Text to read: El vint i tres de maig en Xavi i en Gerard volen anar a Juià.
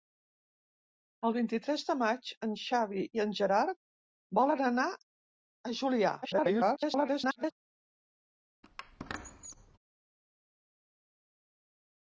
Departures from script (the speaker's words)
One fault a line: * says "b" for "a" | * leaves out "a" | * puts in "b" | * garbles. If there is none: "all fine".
* garbles